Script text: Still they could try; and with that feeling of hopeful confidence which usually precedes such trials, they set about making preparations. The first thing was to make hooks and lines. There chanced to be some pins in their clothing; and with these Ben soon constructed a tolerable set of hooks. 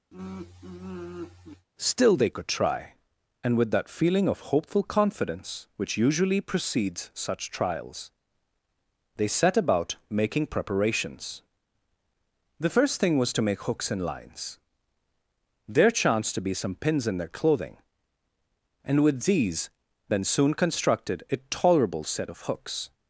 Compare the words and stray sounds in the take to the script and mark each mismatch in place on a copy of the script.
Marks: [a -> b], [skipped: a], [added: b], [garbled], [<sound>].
[sigh] Still they could try; and with that feeling of hopeful confidence which usually precedes such trials, they set about making preparations. The first thing was to make hooks and lines. There chanced to be some pins in their clothing; and with these Ben soon constructed a tolerable set of hooks.